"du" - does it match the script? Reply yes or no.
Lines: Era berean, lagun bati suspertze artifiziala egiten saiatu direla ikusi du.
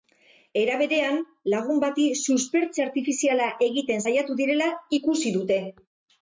no